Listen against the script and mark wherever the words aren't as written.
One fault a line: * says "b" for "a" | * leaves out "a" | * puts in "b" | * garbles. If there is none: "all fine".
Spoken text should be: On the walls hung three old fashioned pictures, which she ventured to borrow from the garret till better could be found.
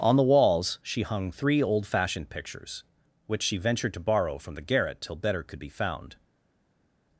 * puts in "she"